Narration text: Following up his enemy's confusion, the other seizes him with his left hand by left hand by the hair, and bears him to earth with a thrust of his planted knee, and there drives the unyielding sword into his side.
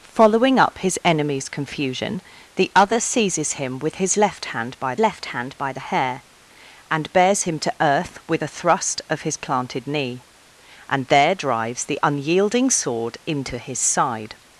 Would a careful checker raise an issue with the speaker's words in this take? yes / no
no